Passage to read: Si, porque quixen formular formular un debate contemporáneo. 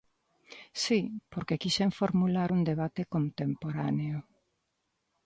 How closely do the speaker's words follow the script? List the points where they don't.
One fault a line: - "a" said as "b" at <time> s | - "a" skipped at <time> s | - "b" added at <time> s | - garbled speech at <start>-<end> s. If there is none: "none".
- "formular" skipped at 2.5 s